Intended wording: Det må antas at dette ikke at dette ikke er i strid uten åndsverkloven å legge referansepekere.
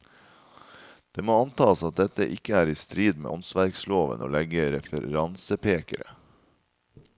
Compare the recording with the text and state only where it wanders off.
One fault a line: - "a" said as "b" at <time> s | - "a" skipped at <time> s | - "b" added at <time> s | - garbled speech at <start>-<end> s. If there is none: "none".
- "at dette ikke" skipped at 2.5 s
- "uten" said as "med" at 3.2 s